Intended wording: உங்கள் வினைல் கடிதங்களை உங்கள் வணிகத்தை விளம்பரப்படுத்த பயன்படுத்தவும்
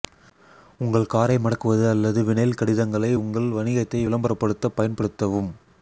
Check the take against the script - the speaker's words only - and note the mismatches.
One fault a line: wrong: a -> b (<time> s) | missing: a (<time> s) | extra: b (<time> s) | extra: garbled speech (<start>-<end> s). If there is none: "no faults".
extra: காரை மடக்குவது அல்லது (1.1 s)